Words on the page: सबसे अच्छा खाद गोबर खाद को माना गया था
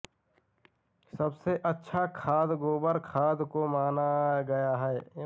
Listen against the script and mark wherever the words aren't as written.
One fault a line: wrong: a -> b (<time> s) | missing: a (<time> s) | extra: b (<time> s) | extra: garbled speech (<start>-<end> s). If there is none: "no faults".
wrong: था -> है (4.9 s)